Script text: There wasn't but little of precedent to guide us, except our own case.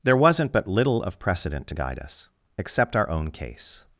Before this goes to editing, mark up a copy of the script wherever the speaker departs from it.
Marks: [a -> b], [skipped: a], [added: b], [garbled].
There wasn't but little of precedent to guide us, except our own case.